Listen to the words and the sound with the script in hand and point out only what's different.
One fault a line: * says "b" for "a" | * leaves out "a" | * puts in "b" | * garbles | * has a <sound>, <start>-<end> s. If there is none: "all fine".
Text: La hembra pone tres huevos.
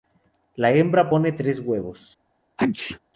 * has a sneeze, 2.6-3.0 s